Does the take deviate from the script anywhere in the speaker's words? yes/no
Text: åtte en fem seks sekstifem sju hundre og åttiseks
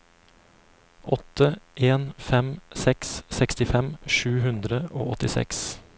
no